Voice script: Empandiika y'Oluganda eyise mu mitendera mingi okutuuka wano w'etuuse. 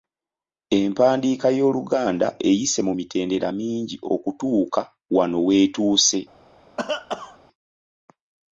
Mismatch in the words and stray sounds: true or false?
true